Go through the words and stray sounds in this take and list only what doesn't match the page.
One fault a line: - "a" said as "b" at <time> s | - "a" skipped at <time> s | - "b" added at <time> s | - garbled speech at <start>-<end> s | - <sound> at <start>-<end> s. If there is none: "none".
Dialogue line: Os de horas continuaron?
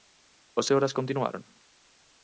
none